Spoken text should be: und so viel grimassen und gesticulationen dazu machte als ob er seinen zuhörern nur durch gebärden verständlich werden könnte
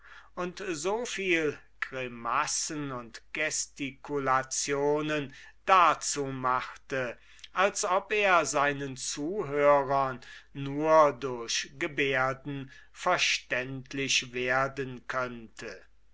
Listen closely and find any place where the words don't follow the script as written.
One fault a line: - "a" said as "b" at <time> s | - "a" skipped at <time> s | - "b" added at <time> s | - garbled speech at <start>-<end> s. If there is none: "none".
none